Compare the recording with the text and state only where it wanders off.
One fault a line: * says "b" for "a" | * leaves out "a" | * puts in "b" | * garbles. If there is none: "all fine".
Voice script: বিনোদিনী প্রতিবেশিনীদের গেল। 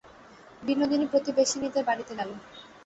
* puts in "বাড়িতে"